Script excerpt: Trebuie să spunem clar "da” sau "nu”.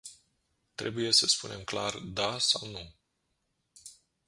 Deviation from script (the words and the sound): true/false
false